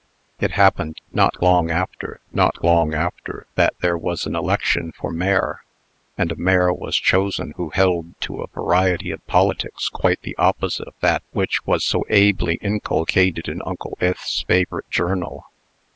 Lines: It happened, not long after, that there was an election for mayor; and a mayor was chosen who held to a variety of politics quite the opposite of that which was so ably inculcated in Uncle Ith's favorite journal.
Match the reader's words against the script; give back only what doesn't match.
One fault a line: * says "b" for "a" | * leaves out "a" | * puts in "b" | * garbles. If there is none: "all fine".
* puts in "not long after"